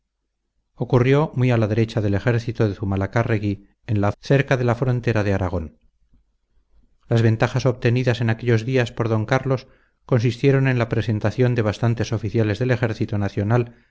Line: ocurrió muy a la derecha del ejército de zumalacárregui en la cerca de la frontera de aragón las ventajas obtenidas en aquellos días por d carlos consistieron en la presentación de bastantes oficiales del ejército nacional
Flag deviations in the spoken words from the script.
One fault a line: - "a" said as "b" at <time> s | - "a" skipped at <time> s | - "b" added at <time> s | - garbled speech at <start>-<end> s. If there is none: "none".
none